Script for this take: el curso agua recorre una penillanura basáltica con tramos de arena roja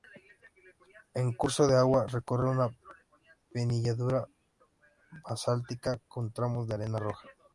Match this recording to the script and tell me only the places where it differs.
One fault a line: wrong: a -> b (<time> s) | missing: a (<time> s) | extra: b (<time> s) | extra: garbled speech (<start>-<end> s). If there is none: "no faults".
extra: de (1.7 s)